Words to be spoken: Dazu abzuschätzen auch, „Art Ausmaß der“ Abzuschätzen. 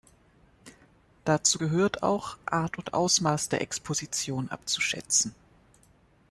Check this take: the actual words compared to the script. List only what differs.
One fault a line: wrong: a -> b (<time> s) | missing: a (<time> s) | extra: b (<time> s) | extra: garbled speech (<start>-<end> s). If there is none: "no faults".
wrong: abzuschätzen -> gehört (1.5 s)
extra: und (2.8 s)
extra: Exposition (3.6 s)